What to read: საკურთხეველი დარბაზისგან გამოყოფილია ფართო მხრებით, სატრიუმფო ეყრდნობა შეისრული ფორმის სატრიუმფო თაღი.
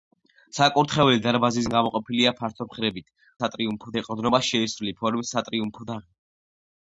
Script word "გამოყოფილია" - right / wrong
right